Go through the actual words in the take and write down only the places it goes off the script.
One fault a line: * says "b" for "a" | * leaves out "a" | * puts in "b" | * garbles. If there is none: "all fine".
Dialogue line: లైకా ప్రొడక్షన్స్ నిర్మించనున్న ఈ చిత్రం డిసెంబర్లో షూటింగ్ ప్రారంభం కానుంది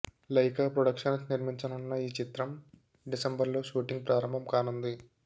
all fine